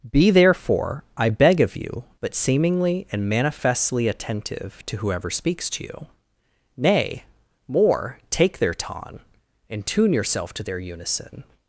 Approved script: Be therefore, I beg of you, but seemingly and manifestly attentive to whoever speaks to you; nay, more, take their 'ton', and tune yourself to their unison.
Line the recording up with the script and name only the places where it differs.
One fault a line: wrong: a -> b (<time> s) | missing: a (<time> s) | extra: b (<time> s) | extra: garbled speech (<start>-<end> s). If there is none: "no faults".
no faults